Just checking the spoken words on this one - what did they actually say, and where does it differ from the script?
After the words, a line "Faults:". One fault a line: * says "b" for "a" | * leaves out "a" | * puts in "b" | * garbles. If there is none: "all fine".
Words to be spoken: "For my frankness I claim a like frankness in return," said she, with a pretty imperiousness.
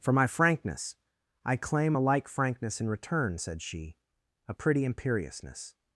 "For my frankness I claim a like frankness in return," said she, a pretty imperiousness.
Faults:
* leaves out "with"